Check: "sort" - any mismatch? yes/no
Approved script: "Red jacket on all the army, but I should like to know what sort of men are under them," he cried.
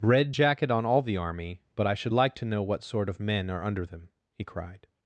no